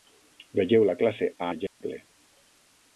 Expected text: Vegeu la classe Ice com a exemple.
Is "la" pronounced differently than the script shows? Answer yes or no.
no